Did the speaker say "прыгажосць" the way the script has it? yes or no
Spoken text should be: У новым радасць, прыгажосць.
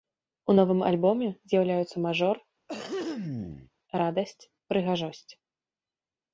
yes